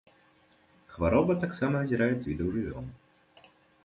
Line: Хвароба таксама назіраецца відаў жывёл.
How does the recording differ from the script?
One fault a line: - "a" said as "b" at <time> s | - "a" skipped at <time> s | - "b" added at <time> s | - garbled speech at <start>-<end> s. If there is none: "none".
none